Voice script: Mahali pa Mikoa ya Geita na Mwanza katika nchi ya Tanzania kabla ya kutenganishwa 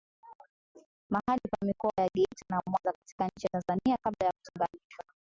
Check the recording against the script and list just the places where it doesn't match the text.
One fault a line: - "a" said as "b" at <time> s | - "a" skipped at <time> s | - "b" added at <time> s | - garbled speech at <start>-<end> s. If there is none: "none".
none